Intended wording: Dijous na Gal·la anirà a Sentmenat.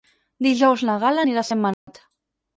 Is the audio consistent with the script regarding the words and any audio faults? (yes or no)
no